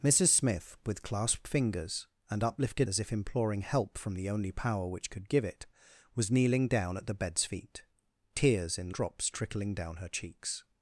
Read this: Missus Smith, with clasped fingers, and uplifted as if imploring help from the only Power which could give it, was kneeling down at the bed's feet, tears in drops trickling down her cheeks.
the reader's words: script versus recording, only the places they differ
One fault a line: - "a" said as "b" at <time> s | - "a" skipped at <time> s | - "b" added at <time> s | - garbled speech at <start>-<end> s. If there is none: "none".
none